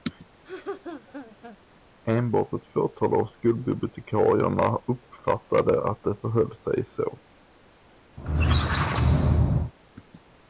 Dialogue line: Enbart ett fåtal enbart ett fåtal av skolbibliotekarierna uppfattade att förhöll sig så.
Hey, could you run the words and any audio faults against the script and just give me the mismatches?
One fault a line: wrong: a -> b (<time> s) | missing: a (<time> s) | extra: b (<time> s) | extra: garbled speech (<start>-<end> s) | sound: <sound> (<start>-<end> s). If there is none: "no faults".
sound: laugh (0.4-1.6 s)
missing: enbart ett fåtal (3.2 s)
extra: det (6.0 s)
sound: squeak (8.2-9.7 s)